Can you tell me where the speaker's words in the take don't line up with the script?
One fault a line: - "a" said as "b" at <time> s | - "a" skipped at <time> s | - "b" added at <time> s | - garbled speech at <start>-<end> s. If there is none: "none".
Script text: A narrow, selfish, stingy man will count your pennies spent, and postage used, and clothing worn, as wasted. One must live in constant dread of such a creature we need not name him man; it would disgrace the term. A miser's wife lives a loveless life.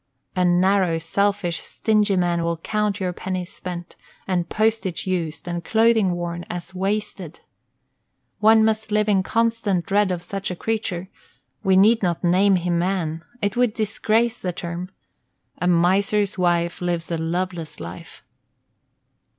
none